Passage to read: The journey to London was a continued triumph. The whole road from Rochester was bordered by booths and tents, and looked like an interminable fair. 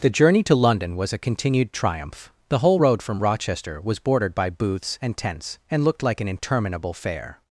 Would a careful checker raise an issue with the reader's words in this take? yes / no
no